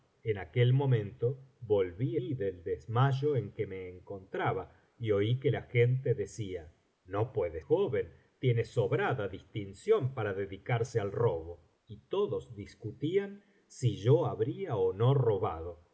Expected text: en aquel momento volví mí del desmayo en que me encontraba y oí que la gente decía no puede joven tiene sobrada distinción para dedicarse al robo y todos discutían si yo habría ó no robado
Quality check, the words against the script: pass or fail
pass